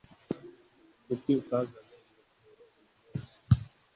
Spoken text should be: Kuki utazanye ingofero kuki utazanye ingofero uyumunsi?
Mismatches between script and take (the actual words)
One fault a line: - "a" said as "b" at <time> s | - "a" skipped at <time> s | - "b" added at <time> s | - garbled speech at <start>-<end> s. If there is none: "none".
- "kuki utazanye ingofero" skipped at 2.6 s